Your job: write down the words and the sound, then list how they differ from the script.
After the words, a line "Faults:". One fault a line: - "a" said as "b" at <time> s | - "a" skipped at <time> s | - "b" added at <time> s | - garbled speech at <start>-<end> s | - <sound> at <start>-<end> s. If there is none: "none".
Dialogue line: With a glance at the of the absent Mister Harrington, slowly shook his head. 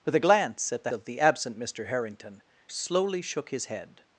With a glance at the of the absent Mister Harrington, slowly shook his head.
Faults:
none